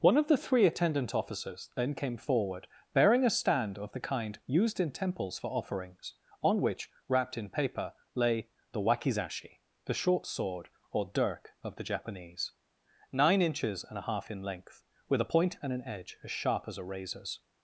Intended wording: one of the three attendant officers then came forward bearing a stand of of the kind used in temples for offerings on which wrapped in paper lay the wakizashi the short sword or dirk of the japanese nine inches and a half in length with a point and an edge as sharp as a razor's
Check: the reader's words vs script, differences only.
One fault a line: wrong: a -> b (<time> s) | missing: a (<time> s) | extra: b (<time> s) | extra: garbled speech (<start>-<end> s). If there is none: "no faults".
missing: of (3.9 s)